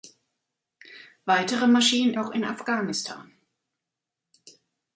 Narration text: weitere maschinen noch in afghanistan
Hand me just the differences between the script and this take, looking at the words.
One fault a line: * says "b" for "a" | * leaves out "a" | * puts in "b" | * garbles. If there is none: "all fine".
all fine